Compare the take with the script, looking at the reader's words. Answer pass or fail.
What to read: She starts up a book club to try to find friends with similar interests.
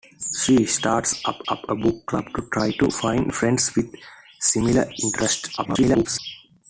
fail